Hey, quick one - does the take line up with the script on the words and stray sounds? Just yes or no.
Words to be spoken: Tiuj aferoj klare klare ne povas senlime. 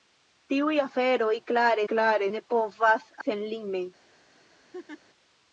no